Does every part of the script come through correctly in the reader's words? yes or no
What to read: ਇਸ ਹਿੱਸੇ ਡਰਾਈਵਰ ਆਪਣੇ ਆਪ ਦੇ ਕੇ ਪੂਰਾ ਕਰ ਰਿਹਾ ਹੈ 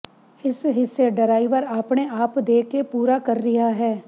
yes